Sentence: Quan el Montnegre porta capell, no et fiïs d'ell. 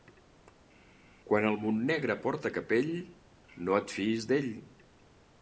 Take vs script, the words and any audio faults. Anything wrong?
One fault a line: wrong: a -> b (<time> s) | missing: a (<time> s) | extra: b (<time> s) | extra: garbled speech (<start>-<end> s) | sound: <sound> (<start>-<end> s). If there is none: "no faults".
no faults